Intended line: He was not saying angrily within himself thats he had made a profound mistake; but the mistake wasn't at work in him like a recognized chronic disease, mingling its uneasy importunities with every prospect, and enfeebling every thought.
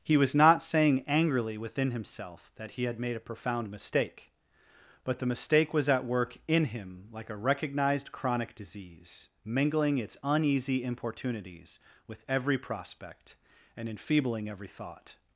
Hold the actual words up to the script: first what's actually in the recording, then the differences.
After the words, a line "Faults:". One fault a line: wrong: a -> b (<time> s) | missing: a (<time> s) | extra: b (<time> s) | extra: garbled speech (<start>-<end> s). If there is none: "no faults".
He was not saying angrily within himself that he had made a profound mistake; but the mistake was at work in him like a recognized chronic disease, mingling its uneasy importunities with every prospect, and enfeebling every thought.
Faults:
wrong: thats -> that (2.5 s)
wrong: wasn't -> was (5.8 s)